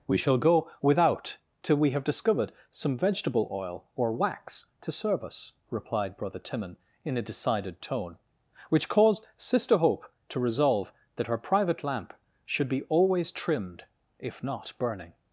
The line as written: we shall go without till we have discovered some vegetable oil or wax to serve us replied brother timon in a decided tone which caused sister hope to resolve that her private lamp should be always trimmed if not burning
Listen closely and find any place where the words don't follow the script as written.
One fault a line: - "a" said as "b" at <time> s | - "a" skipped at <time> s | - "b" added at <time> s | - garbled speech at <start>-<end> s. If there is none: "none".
none